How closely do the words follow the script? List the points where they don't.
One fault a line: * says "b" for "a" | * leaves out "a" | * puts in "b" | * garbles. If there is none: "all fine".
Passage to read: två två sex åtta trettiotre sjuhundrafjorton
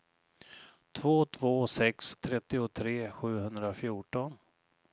* leaves out "åtta"